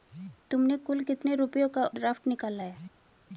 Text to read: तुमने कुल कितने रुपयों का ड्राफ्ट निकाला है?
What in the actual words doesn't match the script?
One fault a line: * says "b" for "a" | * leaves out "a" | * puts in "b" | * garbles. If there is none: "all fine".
all fine